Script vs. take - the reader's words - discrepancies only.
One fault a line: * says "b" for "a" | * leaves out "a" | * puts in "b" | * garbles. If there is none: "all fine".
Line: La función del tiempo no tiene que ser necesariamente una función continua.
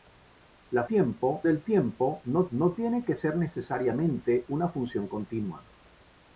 * says "tiempo" for "función"
* puts in "no"